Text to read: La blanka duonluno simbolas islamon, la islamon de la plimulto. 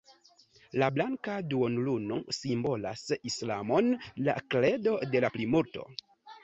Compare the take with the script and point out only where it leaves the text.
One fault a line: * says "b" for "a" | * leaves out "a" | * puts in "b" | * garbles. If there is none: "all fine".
* says "kredo" for "islamon"